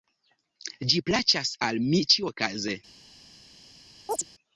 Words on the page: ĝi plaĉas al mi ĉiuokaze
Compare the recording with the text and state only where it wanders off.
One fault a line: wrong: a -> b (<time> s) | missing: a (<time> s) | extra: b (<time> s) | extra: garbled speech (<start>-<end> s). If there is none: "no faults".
no faults